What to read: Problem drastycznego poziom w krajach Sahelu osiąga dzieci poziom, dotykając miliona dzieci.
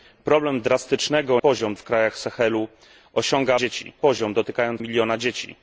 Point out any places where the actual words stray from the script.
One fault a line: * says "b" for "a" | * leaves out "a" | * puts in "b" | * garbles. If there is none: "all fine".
all fine